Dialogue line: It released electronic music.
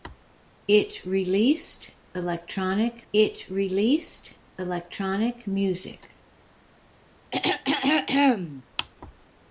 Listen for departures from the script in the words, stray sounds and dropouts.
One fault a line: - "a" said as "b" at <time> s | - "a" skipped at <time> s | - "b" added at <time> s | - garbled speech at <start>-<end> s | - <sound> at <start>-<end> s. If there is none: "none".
- "it released electronic" added at 3.1 s
- throat clearing at 7.3-8.6 s